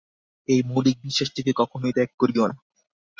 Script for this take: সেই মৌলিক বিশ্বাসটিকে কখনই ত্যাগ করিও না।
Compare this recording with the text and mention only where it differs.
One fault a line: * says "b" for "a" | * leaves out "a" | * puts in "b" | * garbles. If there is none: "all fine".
* says "এই" for "সেই"